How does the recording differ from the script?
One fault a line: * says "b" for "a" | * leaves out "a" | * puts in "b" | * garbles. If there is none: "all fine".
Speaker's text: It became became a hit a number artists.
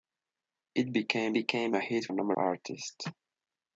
all fine